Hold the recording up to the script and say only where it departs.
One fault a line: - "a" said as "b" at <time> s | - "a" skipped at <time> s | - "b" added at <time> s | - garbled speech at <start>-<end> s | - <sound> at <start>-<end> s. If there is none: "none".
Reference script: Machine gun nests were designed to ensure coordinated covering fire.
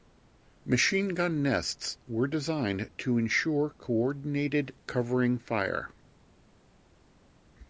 none